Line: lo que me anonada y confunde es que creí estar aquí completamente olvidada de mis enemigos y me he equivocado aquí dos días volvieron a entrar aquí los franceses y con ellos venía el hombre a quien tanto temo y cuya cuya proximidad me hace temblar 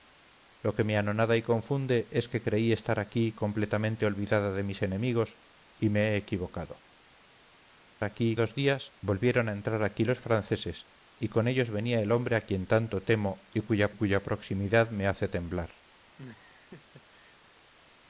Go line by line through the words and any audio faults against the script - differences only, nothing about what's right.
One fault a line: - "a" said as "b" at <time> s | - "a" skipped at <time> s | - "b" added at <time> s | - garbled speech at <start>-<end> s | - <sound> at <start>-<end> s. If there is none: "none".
- laugh at 16.2-17.4 s